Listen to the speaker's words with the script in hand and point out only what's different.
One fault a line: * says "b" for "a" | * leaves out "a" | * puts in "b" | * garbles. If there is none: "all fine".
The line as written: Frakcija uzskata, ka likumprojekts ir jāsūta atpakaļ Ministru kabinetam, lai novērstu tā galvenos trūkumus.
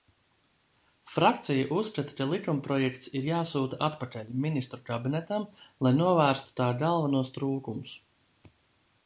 all fine